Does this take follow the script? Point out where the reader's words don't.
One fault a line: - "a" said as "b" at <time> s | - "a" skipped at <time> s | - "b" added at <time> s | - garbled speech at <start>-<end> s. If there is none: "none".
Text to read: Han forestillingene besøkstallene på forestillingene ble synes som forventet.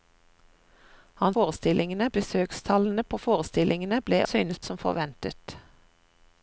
none